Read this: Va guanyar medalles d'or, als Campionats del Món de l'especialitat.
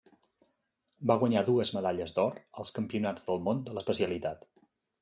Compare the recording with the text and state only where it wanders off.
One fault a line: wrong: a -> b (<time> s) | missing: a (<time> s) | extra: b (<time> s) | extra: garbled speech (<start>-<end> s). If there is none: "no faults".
extra: dues (1.5 s)